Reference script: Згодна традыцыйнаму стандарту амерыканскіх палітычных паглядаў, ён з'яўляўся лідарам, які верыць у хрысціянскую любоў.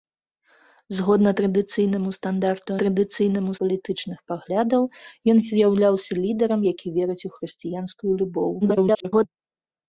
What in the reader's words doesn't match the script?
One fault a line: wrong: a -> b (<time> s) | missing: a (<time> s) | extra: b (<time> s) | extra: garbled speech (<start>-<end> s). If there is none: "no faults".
wrong: амерыканскіх -> традыцыйнаму (2.8 s)
extra: garbled speech (8.6-9.3 s)